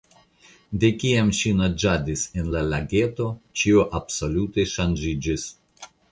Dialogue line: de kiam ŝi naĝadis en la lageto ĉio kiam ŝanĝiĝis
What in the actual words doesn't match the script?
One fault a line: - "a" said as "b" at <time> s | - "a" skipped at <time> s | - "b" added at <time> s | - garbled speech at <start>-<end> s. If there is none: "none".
- "kiam" said as "absolute" at 4.0 s